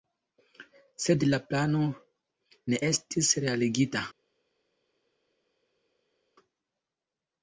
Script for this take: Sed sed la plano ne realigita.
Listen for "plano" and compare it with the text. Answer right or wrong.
right